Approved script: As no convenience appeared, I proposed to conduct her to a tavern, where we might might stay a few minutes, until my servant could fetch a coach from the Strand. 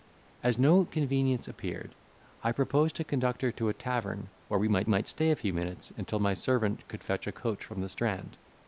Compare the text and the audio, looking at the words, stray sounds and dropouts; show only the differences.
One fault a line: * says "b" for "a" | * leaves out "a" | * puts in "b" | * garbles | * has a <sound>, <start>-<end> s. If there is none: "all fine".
all fine